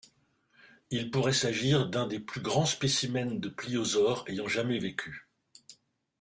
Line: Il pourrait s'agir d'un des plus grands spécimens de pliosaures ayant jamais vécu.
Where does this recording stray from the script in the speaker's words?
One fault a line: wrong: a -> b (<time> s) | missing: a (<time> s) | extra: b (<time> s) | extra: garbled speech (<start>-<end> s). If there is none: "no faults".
no faults